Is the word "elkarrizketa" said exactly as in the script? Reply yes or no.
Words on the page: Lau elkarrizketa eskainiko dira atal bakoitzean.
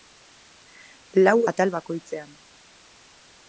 no